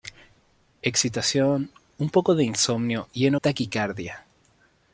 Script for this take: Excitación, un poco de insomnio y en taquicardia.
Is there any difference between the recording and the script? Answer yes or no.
no